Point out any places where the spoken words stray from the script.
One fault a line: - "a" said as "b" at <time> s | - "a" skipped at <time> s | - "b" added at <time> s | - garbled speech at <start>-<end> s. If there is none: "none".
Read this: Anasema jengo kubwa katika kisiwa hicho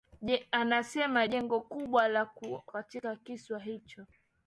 none